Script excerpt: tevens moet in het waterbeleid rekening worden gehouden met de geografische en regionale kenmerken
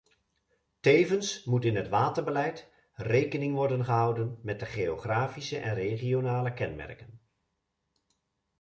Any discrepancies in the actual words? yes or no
no